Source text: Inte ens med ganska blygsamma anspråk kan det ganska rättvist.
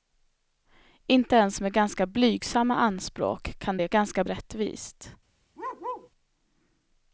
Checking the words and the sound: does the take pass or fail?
fail